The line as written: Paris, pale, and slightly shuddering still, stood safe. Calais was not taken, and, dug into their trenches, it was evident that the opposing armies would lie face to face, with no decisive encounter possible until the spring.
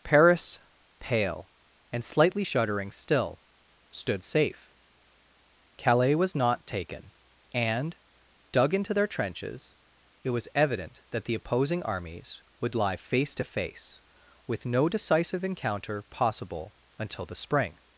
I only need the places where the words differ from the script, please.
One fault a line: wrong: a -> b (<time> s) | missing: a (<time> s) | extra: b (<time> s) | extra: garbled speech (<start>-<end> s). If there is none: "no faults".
no faults